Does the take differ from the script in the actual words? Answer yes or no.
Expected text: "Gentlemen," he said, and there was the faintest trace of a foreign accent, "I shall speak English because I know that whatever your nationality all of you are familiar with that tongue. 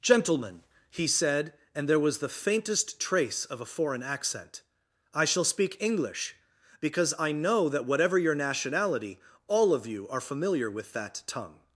no